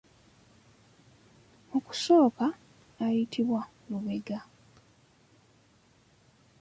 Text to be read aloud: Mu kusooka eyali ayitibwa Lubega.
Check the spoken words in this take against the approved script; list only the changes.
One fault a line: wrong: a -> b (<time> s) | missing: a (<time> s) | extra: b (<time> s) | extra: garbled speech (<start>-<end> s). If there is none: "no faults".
missing: eyali (2.5 s)